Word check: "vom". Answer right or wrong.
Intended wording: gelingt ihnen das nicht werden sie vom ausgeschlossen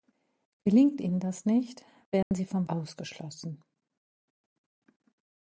right